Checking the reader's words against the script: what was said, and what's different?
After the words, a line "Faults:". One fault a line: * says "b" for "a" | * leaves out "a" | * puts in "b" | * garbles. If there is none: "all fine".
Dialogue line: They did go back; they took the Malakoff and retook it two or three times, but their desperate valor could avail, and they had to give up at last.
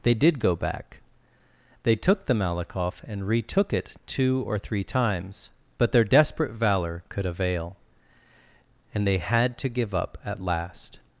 They did go back; they took the Malakoff and retook it two or three times, but their desperate valor could avail, and they had to give up at last.
Faults:
all fine